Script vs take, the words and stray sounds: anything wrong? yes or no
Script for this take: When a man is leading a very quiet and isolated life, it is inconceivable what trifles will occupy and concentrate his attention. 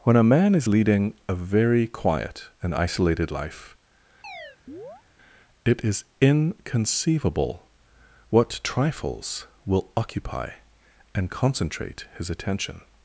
yes